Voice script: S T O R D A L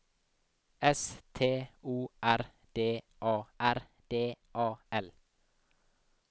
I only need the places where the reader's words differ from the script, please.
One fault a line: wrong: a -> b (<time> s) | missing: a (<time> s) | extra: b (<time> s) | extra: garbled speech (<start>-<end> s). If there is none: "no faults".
extra: R D A (3.6 s)